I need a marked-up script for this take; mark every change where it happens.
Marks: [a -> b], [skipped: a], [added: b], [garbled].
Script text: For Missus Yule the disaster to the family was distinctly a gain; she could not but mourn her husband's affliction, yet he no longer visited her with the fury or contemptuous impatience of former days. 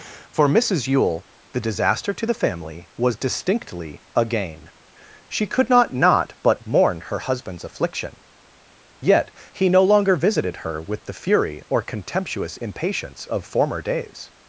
For Missus Yule the disaster to the family was distinctly a gain; she could not [added: not] but mourn her husband's affliction, yet he no longer visited her with the fury or contemptuous impatience of former days.